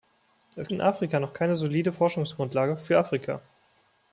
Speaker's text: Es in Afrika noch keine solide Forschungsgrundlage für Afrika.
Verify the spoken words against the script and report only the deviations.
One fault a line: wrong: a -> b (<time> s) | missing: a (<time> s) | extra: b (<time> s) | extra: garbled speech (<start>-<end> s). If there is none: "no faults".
no faults